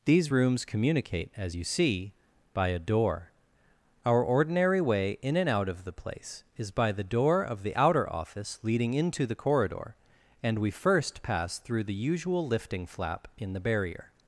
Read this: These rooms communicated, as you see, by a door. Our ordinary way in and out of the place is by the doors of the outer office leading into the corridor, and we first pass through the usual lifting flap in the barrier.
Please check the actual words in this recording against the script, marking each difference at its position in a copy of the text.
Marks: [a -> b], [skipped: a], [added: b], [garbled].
These rooms [communicated, -> communicate] as you see, by a door. Our ordinary way in and out of the place is by the [doors -> door] of the outer office leading into the corridor, and we first pass through the usual lifting flap in the barrier.